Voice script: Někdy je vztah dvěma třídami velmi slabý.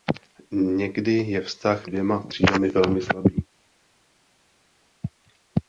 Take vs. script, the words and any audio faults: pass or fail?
pass